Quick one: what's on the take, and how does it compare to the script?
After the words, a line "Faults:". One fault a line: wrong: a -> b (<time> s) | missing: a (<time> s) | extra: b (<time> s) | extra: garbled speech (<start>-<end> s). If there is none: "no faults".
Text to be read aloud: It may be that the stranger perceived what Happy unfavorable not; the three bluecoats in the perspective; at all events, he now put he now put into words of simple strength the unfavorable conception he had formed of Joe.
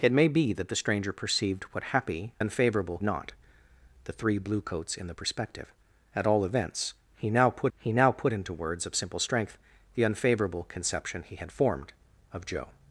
It may be that the stranger perceived what Happy unfavorable not; the three bluecoats in the perspective; at all events, he now put he now put into words of simple strength the unfavorable conception he had formed of Joe.
Faults:
no faults